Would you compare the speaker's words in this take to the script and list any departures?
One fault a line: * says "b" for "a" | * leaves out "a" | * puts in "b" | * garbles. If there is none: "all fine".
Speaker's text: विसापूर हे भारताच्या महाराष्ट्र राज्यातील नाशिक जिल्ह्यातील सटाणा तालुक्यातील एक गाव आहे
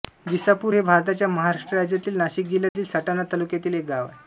all fine